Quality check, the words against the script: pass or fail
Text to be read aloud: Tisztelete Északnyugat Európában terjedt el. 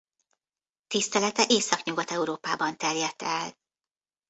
pass